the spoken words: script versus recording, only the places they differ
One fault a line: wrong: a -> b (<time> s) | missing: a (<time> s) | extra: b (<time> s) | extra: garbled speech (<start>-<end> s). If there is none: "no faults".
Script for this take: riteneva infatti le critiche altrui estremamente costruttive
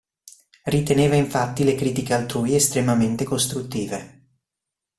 no faults